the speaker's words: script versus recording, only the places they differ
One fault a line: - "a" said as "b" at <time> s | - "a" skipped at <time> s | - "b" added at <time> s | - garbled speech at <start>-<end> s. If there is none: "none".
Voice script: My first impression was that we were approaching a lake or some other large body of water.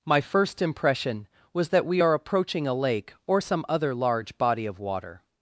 - "were" said as "are" at 2.0 s